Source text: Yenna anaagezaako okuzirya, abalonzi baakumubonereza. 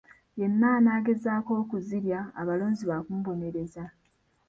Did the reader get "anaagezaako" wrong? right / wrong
right